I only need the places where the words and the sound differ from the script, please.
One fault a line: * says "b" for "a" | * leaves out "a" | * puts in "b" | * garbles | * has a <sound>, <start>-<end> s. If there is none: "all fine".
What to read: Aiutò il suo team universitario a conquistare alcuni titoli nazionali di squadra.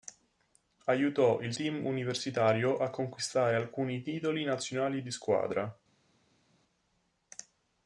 * leaves out "suo"